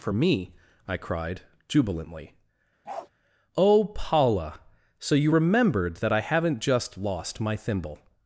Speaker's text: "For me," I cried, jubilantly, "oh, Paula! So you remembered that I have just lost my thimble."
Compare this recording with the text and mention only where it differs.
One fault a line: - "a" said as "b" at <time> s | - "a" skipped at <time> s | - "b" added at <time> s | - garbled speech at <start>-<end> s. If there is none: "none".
- "have" said as "haven't" at 6.2 s